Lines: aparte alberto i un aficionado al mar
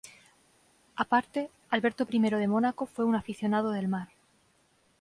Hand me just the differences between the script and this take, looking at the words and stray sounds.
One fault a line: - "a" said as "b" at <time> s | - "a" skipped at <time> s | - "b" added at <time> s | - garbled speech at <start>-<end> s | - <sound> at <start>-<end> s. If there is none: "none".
- "de mónaco fue" added at 2.2 s
- "al" said as "del" at 3.7 s